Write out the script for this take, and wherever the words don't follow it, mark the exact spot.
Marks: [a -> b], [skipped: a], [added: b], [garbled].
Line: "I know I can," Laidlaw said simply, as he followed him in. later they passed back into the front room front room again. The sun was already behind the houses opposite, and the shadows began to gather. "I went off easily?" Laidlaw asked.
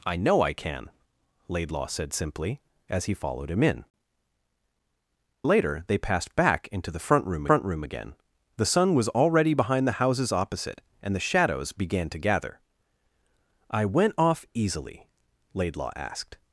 "I know I can," Laidlaw said simply, as he followed him in. later they passed back into the front room front room again. The sun was already behind the houses opposite, and the shadows began to gather. "I went off easily?" Laidlaw asked.